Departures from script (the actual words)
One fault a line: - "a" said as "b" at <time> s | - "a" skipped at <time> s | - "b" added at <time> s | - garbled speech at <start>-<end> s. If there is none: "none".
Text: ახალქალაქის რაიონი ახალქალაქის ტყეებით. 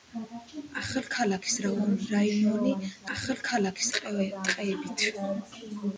none